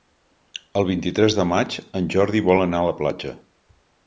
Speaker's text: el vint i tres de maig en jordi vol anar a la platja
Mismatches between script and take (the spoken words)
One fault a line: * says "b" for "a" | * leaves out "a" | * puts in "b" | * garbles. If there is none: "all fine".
all fine